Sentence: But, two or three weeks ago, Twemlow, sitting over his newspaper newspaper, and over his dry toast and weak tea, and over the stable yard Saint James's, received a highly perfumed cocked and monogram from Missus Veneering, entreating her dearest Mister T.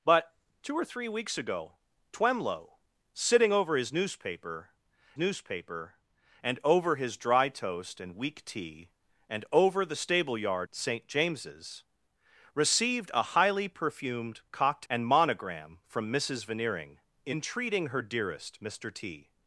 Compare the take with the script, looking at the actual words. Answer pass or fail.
pass